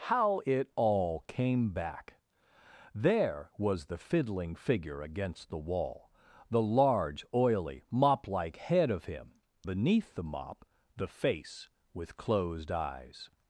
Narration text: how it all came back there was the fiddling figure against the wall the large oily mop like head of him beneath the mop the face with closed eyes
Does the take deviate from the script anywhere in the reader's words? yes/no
no